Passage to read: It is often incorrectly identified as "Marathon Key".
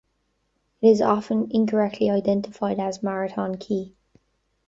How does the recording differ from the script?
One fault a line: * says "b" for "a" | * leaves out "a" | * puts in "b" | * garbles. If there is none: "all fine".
all fine